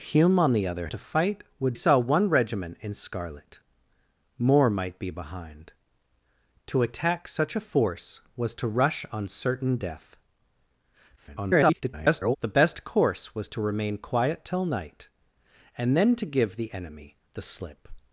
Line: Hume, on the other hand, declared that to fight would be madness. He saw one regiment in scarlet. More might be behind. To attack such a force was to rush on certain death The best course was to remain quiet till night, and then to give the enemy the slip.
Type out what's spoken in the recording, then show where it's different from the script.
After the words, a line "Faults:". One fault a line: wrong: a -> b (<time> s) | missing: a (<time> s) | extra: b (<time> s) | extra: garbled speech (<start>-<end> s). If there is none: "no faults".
Hume, on the other to fight would saw one regiment in scarlet. More might be behind. To attack such a force was to rush on certain death [garbled] The best course was to remain quiet till night, and then to give the enemy the slip.
Faults:
missing: hand declared that (0.9 s)
missing: be madness He (1.8 s)
extra: garbled speech (11.2-12.4 s)